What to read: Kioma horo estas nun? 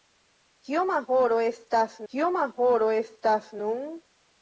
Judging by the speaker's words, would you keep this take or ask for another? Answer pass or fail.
fail